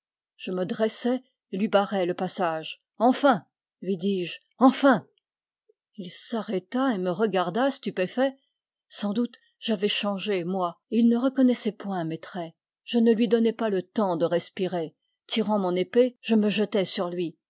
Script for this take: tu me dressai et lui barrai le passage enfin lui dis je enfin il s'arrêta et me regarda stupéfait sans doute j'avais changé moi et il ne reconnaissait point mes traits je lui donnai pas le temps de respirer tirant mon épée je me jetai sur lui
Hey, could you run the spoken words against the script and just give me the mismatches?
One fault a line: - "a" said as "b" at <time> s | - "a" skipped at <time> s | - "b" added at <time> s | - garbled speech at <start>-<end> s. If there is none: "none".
- "tu" said as "je" at 0.3 s
- "ne" added at 13.0 s